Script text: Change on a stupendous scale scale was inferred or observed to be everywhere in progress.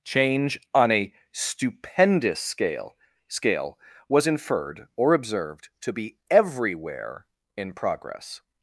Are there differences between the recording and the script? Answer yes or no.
no